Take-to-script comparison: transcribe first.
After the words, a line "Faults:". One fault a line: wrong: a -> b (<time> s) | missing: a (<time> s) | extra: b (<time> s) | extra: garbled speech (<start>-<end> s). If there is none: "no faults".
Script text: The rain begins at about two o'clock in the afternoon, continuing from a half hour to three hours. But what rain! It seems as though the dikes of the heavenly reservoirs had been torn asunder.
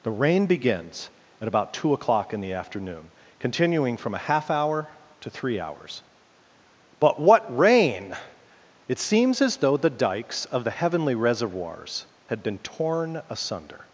The rain begins at about two o'clock in the afternoon, continuing from a half hour to three hours. But what rain! It seems as though the dikes of the heavenly reservoirs had been torn asunder.
Faults:
no faults